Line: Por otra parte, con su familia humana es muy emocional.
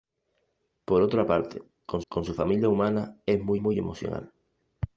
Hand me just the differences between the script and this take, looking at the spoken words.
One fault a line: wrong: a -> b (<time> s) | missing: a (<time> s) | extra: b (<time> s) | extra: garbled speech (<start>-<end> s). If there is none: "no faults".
extra: con (2.1 s)
extra: muy (3.6 s)